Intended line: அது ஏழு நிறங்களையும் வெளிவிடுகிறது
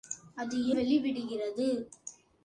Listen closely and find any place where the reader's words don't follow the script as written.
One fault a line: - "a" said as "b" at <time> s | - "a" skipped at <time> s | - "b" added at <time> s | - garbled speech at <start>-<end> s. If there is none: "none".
- "ஏழு நிறங்களையும்" skipped at 0.6 s